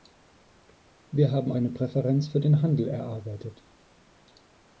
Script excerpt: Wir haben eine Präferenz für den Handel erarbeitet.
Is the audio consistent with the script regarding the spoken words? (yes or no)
yes